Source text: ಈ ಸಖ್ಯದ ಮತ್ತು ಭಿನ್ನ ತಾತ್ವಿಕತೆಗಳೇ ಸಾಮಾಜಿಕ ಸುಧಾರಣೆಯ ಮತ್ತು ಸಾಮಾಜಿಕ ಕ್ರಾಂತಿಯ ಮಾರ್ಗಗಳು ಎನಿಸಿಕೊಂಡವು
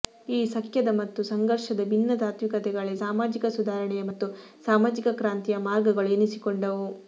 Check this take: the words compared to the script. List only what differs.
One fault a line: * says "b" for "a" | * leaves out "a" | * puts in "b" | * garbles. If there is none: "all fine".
* puts in "ಸಂಘರ್ಷದ"